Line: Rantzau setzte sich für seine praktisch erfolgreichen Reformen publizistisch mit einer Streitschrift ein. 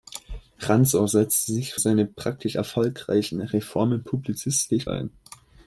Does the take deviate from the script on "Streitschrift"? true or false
true